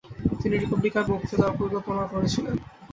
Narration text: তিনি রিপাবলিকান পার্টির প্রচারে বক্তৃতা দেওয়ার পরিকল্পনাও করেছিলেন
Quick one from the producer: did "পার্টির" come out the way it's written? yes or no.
no